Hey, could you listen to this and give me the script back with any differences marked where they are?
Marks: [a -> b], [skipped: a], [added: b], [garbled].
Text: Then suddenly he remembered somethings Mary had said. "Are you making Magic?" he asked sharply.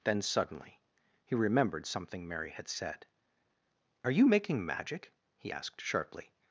Then suddenly he remembered [somethings -> something] Mary had said. "Are you making Magic?" he asked sharply.